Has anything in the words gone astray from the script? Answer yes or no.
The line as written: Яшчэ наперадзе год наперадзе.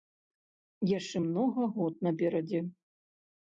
yes